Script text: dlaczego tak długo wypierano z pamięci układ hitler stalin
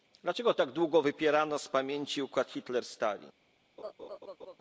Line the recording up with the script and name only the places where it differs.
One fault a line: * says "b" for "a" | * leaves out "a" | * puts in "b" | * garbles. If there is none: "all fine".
all fine